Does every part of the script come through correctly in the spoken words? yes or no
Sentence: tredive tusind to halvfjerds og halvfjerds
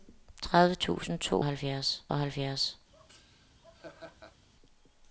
yes